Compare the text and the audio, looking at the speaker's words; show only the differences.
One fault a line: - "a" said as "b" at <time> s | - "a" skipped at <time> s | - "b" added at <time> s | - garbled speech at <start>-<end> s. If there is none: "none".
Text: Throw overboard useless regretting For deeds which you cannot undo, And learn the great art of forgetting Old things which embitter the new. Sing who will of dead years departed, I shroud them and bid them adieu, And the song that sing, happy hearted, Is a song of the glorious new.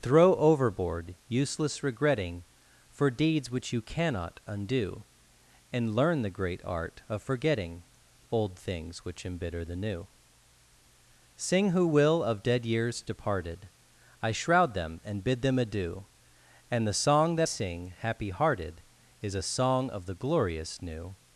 none